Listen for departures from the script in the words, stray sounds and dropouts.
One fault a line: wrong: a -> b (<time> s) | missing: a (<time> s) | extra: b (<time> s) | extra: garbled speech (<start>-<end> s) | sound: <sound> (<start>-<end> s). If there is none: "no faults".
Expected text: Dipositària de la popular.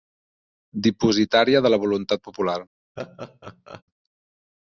extra: voluntat (1.9 s)
sound: laugh (3.0-3.8 s)